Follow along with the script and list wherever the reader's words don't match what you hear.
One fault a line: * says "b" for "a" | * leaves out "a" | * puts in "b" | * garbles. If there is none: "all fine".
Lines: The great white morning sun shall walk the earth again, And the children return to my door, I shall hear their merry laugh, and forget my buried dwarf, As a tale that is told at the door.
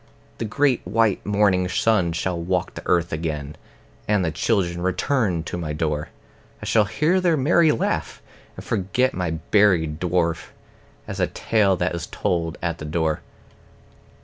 all fine